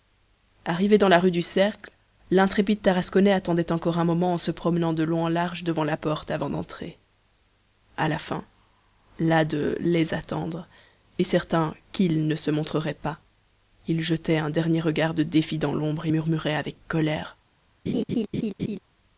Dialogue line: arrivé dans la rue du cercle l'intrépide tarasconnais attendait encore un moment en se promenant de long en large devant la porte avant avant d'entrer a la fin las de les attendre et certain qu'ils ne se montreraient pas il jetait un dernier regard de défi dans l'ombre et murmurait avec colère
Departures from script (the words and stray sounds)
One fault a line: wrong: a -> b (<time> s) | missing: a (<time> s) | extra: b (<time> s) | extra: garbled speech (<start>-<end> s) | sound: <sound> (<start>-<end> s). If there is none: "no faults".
missing: avant (6.5 s)
sound: laugh (17.9-18.8 s)